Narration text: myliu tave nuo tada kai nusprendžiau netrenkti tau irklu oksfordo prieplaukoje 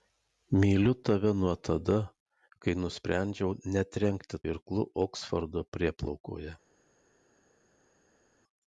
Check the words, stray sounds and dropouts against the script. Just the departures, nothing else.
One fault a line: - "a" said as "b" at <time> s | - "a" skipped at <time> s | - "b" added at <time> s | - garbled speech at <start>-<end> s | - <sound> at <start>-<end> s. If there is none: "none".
- "tau" skipped at 4.4 s